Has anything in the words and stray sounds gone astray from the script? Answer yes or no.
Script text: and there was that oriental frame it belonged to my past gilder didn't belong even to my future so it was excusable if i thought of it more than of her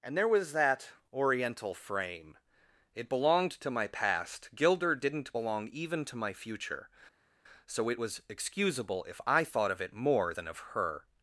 no